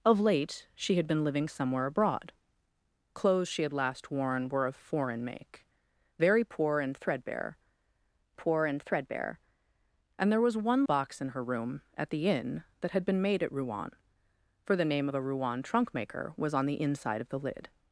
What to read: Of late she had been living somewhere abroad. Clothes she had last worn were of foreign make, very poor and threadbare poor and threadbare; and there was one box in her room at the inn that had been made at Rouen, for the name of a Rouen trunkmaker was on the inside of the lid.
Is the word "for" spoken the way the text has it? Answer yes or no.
yes